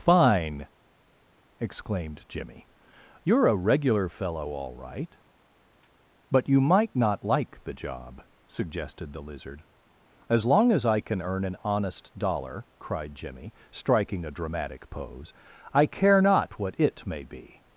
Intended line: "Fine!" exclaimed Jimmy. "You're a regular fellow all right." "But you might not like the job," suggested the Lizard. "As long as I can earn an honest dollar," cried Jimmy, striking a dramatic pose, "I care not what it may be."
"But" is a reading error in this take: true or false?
false